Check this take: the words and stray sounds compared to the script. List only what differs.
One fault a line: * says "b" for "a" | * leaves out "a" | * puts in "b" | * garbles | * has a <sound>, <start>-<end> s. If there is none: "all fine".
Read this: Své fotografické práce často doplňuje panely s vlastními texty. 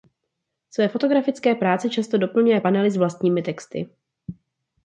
all fine